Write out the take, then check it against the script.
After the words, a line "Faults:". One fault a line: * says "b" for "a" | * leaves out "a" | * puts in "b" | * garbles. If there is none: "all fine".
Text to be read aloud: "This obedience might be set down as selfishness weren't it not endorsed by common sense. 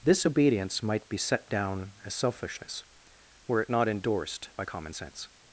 "This obedience might be set down as selfishness were it not endorsed by common sense.
Faults:
* says "were" for "weren't"